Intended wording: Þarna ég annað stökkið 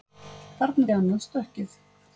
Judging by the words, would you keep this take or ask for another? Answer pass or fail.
pass